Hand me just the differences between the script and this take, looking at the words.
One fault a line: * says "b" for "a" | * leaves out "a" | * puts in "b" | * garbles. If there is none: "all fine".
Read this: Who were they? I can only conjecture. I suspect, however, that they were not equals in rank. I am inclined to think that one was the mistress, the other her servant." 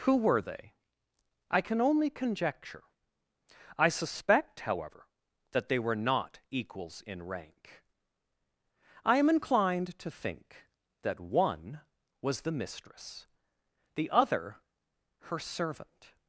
all fine